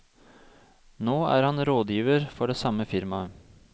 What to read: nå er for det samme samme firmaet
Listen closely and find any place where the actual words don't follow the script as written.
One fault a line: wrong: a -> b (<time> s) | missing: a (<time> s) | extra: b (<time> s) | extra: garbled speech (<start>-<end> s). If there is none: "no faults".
extra: han rådgiver (1.5 s)
missing: samme (2.9 s)